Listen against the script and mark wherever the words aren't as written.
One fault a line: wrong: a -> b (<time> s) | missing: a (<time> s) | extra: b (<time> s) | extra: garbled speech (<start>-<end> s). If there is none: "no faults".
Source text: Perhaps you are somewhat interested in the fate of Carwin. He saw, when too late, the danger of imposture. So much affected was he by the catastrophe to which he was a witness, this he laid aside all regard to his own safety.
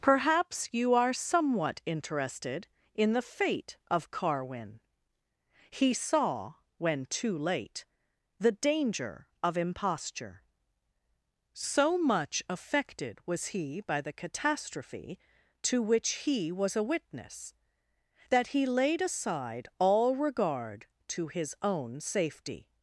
wrong: this -> that (18.3 s)